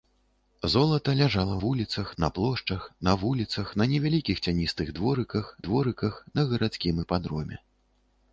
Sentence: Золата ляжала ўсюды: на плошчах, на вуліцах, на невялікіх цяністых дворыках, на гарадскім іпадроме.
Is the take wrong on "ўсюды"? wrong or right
wrong